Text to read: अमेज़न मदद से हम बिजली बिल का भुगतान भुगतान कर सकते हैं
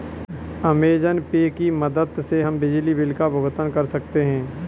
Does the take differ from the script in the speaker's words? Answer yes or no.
yes